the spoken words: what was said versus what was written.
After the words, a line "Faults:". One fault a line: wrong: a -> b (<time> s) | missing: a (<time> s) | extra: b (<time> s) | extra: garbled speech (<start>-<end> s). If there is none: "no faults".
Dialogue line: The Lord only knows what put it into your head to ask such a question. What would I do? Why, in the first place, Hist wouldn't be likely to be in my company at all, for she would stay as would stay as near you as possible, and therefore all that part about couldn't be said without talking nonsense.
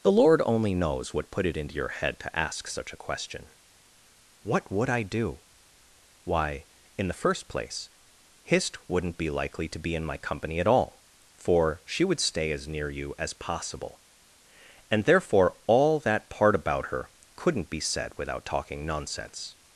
The Lord only knows what put it into your head to ask such a question. What would I do? Why, in the first place, Hist wouldn't be likely to be in my company at all, for she would stay as near you as possible, and therefore all that part about her couldn't be said without talking nonsense.
Faults:
missing: would stay as (12.7 s)
extra: her (16.9 s)